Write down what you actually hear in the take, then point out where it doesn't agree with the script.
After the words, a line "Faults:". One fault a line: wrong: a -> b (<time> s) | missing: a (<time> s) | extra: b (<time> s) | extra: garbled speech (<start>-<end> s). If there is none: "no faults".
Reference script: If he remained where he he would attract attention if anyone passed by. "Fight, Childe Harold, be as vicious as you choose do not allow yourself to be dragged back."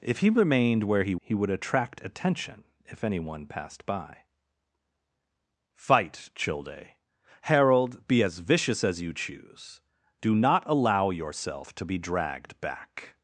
If he remained where he he would attract attention if anyone passed by. "Fight, Childe Harold, be as vicious as you choose do not allow yourself to be dragged back."
Faults:
no faults